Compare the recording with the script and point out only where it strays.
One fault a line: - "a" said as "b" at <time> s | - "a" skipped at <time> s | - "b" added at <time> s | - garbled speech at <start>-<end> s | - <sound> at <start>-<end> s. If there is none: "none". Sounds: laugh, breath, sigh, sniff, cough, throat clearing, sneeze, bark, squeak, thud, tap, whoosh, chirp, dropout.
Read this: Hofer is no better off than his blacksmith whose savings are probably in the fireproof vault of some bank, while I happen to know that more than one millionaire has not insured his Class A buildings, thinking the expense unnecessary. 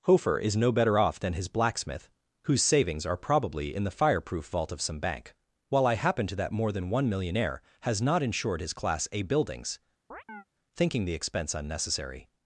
- "know" skipped at 6.3 s
- chirp at 10.1-10.4 s